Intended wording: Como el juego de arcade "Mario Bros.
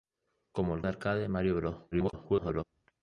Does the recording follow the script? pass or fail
fail